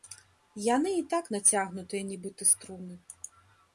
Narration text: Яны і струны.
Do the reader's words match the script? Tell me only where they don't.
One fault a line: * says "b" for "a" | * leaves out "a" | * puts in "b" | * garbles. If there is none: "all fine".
* puts in "так нацягнутыя нібыта"